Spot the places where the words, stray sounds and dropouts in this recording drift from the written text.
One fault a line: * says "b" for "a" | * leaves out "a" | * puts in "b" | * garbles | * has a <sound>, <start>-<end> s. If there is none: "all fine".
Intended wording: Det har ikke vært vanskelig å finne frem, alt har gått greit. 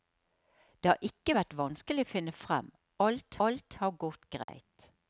* puts in "alt"
* has a dropout, 4.4-4.5 s